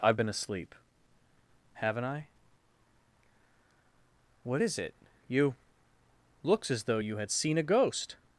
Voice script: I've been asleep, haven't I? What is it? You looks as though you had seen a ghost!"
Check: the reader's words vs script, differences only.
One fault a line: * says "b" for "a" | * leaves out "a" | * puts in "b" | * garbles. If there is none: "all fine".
all fine